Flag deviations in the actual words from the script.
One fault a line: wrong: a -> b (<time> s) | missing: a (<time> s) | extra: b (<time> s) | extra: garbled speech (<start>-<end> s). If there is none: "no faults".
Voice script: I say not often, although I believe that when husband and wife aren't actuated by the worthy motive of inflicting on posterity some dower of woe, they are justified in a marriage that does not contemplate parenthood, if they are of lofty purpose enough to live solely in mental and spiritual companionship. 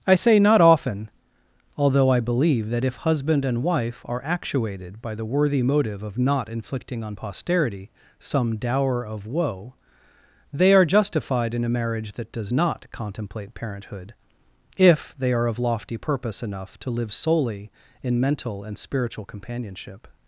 wrong: when -> if (2.8 s)
wrong: aren't -> are (4.0 s)
extra: not (6.2 s)